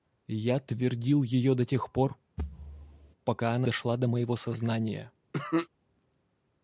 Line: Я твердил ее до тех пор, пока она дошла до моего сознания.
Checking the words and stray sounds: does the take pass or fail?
fail